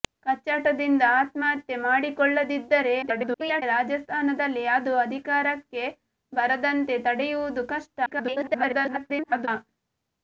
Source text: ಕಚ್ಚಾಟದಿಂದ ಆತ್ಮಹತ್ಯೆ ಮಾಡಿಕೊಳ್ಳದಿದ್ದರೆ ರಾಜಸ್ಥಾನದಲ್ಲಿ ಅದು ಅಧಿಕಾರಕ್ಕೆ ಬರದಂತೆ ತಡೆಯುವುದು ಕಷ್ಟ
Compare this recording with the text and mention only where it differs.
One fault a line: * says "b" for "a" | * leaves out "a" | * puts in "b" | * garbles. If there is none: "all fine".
* garbles
* garbles